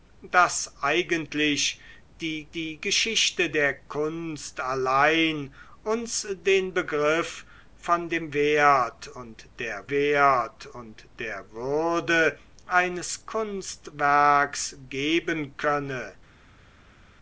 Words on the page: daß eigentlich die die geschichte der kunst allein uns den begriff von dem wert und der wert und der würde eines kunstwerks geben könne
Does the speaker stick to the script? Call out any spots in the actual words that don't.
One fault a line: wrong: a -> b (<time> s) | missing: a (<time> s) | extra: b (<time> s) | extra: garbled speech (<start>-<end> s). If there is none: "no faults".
no faults